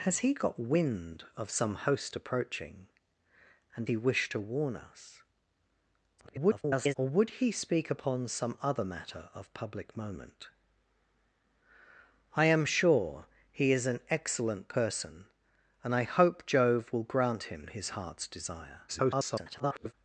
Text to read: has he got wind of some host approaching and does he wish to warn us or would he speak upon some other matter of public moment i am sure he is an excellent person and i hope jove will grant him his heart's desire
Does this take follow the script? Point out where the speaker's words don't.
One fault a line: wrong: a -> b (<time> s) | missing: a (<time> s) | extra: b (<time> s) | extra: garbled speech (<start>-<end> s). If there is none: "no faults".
missing: does (3.9 s)
extra: garbled speech (6.2-6.9 s)
extra: garbled speech (18.9-19.9 s)